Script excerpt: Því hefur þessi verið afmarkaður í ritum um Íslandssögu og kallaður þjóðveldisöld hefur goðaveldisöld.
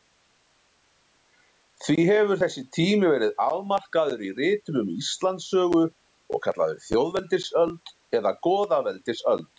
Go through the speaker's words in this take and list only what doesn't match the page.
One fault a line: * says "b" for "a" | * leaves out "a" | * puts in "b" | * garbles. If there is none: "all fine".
* puts in "tími"
* says "eða" for "hefur"